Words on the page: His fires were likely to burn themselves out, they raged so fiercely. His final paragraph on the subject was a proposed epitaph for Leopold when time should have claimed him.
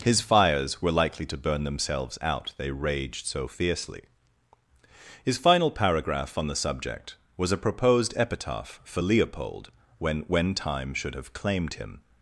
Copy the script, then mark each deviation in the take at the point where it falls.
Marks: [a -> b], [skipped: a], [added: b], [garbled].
His fires were likely to burn themselves out, they raged so fiercely. His final paragraph on the subject was a proposed epitaph for Leopold when [added: when] time should have claimed him.